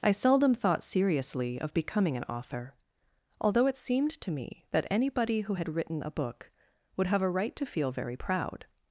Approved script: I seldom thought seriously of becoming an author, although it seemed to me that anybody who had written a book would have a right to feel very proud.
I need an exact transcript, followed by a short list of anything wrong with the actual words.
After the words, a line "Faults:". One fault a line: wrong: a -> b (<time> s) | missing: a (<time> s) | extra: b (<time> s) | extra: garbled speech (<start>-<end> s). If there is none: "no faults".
I seldom thought seriously of becoming an author, although it seemed to me that anybody who had written a book would have a right to feel very proud.
Faults:
no faults